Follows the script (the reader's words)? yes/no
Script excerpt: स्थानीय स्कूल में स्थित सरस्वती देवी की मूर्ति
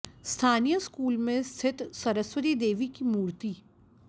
yes